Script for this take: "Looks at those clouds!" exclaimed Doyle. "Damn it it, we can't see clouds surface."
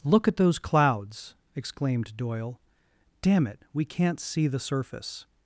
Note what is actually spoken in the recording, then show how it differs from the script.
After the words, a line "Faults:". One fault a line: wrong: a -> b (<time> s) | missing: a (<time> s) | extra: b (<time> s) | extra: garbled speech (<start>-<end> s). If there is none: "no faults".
"Look at those clouds!" exclaimed Doyle. "Damn it, we can't see the surface."
Faults:
wrong: Looks -> Look (0.0 s)
missing: it (3.6 s)
wrong: clouds -> the (4.5 s)